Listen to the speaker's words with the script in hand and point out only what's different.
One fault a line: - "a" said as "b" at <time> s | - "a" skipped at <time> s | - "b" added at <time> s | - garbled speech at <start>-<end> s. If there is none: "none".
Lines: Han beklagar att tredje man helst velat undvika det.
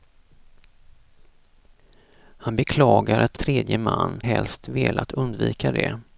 none